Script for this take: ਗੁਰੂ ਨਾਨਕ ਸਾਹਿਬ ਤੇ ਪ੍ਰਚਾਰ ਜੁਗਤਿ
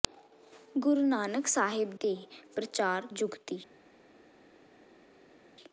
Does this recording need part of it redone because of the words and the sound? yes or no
no